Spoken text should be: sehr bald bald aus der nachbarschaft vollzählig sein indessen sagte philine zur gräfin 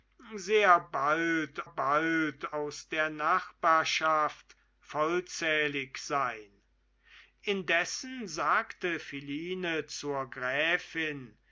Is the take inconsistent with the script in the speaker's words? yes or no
no